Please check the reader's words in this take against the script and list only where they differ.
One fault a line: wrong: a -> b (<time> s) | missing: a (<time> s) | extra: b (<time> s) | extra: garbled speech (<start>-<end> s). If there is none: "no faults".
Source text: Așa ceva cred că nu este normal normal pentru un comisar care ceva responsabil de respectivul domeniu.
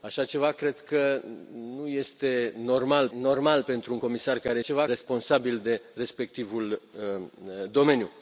no faults